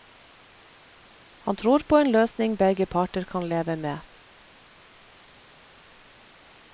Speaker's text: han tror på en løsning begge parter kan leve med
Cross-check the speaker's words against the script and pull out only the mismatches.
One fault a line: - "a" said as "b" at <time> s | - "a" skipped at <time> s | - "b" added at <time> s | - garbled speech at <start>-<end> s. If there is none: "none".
none